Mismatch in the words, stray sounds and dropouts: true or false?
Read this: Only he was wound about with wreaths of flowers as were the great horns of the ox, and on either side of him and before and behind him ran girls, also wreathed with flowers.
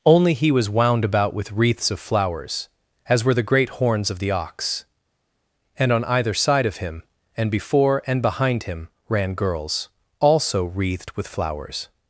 false